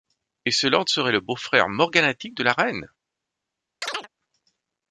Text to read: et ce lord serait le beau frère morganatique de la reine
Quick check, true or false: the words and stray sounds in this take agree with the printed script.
false